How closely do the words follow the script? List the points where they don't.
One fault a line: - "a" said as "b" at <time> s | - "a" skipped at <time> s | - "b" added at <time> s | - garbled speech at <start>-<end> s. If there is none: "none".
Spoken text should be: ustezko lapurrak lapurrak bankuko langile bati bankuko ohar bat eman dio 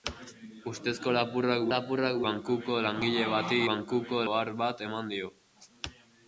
none